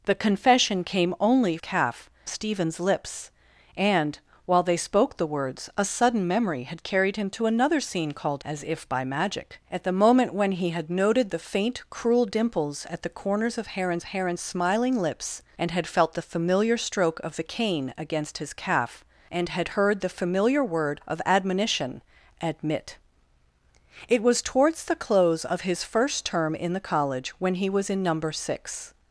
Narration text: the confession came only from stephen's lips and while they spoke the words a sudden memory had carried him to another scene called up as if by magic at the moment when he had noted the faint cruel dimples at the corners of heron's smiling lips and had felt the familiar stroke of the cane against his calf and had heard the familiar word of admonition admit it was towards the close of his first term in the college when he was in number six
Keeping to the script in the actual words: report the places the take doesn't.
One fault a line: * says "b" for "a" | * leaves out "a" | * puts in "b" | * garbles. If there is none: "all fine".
* says "calf" for "from"
* leaves out "up"
* puts in "heron's"